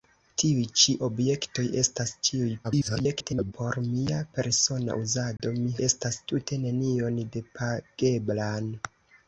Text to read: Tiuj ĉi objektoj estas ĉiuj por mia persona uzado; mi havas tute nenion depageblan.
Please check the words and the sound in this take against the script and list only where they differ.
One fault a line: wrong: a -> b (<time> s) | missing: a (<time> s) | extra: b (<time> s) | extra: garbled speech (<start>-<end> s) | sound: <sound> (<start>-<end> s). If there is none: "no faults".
extra: garbled speech (2.6-3.5 s)
sound: dropout (5.4-5.4 s)
wrong: havas -> estas (5.9 s)